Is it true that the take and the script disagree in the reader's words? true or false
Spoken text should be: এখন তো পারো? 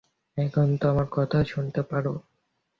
true